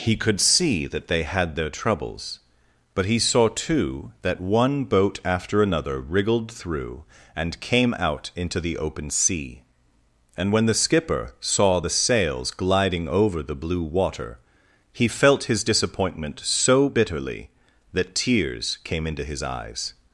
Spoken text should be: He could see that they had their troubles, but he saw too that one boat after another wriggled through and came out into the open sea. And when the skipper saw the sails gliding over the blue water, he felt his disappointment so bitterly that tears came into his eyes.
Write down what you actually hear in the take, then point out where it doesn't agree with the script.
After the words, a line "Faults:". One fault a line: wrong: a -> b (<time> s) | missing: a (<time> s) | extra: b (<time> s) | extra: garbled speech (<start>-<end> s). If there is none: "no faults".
He could see that they had their troubles, but he saw too that one boat after another wriggled through and came out into the open sea. And when the skipper saw the sails gliding over the blue water, he felt his disappointment so bitterly that tears came into his eyes.
Faults:
no faults